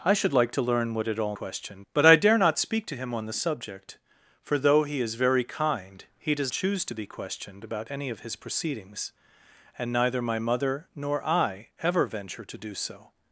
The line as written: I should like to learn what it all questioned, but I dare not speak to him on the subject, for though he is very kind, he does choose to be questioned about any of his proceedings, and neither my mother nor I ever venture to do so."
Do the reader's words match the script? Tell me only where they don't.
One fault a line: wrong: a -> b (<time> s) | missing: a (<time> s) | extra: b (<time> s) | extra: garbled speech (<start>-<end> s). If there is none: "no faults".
no faults